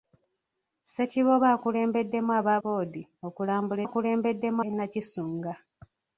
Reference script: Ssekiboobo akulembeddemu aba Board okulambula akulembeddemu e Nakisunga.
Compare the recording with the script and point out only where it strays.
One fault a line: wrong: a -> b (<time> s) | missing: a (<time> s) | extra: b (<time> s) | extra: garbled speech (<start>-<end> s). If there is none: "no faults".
no faults